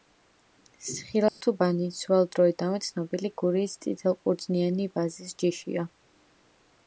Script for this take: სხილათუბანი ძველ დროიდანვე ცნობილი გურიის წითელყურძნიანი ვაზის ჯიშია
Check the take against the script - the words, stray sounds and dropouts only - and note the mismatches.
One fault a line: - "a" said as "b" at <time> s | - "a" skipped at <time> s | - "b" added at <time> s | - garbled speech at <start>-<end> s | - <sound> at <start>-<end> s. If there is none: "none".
- dropout at 1.3-1.4 s